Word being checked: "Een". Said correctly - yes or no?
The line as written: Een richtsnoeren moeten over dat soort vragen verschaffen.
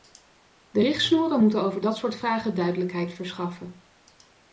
no